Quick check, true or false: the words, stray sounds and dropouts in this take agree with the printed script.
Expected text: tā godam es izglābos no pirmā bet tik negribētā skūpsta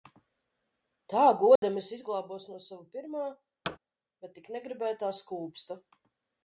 false